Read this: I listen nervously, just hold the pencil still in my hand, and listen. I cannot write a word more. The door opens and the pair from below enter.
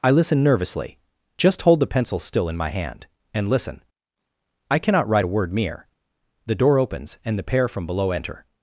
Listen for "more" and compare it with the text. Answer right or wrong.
wrong